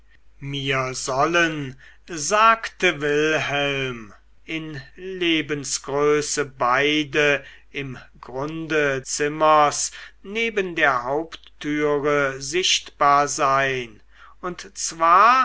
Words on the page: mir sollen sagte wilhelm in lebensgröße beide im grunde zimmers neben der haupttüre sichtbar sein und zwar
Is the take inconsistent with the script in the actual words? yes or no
no